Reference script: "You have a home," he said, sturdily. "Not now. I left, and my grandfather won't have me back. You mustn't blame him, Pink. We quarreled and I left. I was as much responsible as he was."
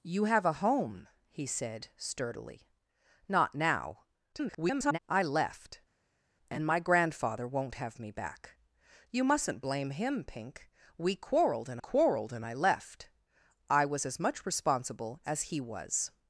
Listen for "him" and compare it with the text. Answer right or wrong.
right